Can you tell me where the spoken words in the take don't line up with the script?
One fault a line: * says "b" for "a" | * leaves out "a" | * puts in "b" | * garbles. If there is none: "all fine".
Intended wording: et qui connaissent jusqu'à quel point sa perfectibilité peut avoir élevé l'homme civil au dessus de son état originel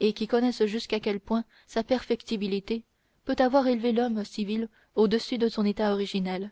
all fine